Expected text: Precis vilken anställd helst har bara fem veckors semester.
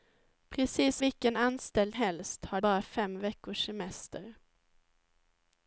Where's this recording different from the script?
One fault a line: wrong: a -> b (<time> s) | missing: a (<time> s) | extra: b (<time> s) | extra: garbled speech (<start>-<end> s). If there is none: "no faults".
no faults